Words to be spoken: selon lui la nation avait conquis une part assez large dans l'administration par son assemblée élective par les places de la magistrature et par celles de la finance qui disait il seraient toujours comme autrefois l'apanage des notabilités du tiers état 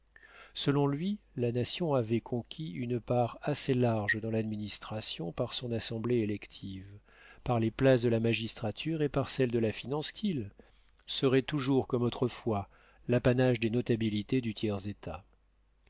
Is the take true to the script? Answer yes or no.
no